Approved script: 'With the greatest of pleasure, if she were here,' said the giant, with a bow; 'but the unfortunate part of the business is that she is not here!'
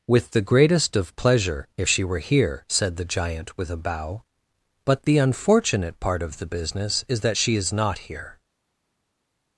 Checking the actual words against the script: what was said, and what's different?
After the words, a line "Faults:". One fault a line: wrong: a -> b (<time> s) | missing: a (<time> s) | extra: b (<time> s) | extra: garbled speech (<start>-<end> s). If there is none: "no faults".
'With the greatest of pleasure, if she were here,' said the giant, with a bow; 'but the unfortunate part of the business is that she is not here!'
Faults:
no faults